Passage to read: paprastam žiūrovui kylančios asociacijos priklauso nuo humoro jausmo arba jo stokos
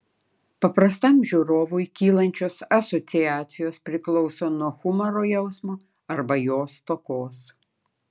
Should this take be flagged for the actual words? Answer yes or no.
no